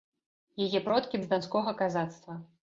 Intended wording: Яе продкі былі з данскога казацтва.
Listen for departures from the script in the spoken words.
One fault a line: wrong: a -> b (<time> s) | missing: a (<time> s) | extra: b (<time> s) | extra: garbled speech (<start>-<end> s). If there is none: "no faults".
missing: былі (1.2 s)